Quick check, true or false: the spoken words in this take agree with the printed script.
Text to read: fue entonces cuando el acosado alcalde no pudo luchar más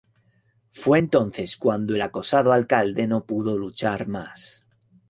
true